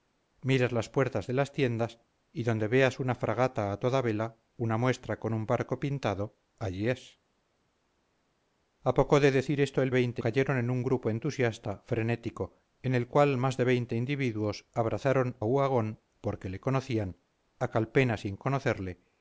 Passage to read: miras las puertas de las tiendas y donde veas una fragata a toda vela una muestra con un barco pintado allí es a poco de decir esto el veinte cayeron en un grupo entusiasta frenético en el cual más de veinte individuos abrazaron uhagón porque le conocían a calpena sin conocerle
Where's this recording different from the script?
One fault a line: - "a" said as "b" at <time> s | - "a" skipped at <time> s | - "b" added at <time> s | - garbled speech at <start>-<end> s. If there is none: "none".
none